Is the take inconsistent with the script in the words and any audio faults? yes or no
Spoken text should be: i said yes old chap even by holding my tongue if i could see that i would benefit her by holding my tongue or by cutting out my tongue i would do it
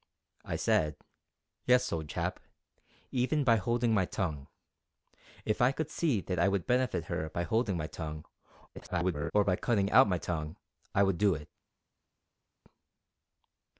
yes